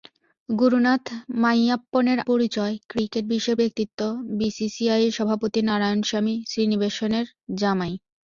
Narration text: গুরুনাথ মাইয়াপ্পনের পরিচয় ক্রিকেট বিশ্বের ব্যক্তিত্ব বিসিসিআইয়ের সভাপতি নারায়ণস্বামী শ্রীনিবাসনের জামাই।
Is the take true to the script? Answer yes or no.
yes